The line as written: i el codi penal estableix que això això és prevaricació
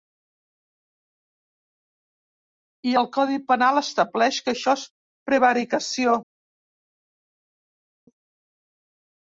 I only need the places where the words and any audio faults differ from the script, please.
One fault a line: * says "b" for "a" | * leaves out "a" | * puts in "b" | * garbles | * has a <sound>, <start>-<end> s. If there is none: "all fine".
* leaves out "això"